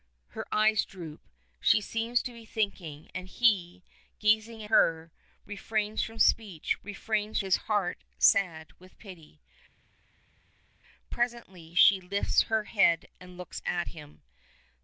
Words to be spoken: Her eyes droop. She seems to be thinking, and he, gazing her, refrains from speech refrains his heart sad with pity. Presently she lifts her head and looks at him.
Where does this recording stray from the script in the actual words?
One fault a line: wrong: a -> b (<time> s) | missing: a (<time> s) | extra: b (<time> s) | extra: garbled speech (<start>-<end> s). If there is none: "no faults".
no faults